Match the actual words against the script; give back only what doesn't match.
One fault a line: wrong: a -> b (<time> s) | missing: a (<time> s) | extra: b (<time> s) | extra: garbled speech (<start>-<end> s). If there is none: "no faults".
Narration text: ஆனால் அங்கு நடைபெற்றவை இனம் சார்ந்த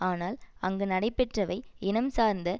no faults